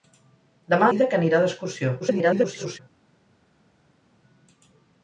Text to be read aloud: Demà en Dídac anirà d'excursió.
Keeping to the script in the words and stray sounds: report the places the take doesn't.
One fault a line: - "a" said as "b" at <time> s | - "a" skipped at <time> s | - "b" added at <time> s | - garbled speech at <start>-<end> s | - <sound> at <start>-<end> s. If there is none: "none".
- "en" skipped at 0.9 s
- garbled speech at 2.0-2.8 s